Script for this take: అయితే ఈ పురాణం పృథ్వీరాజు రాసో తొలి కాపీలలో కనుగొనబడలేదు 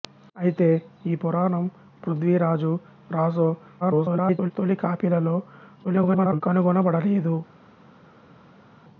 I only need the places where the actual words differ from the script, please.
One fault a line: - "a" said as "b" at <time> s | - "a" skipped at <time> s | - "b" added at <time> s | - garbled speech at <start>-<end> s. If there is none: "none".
- garbled speech at 3.8-4.5 s
- garbled speech at 5.8-6.4 s